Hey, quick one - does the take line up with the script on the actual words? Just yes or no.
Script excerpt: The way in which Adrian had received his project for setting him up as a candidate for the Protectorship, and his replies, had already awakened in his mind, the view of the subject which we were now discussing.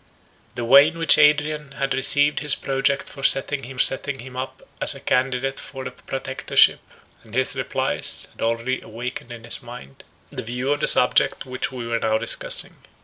no